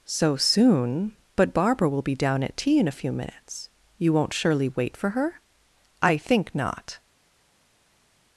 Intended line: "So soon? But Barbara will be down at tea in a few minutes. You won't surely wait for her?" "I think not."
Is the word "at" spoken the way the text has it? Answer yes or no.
yes